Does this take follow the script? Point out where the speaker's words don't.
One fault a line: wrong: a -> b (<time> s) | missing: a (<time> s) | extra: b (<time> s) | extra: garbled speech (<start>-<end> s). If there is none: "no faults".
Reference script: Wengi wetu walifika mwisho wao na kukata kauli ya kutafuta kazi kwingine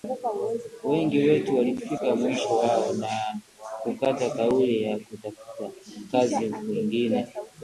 no faults